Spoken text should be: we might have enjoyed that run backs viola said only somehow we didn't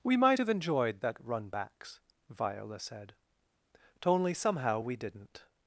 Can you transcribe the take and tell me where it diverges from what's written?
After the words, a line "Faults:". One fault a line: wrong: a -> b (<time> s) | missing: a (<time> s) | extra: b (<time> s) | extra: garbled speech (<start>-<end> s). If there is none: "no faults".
we might have enjoyed that run backs viola said only somehow we didn't
Faults:
no faults